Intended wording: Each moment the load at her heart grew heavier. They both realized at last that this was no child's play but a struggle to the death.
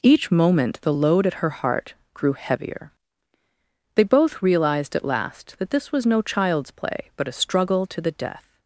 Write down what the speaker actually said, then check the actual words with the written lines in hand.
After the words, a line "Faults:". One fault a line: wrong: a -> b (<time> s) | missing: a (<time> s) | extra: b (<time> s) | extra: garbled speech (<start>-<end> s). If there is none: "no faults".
Each moment the load at her heart grew heavier. They both realized at last that this was no child's play but a struggle to the death.
Faults:
no faults